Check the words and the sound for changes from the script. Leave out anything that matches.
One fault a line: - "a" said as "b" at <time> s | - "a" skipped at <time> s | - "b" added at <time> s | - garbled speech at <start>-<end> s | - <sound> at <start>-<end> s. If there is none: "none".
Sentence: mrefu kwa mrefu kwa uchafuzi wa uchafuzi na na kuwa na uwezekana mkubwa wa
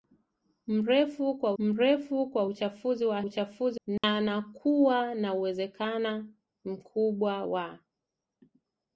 - dropout at 4.0-4.0 s